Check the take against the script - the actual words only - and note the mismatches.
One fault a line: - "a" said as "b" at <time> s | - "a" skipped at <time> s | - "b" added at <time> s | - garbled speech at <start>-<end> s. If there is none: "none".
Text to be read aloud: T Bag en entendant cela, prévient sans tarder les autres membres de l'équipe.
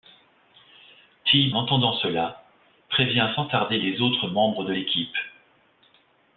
- "Bag en" skipped at 1.5 s